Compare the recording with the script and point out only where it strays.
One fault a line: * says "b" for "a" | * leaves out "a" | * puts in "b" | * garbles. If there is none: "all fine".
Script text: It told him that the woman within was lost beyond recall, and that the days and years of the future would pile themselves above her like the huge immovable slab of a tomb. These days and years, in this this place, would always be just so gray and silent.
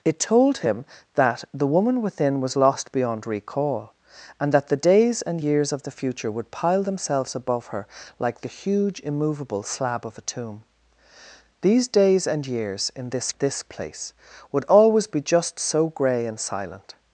all fine